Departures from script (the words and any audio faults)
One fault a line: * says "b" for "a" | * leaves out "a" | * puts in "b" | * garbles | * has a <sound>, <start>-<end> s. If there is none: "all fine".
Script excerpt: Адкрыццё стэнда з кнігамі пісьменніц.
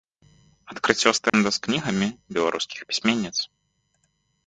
* has a dropout, 1.3-1.3 s
* puts in "беларускіх"